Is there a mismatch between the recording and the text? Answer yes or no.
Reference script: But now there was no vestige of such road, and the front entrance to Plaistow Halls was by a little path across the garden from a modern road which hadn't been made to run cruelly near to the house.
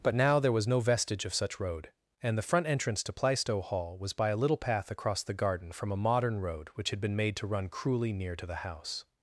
yes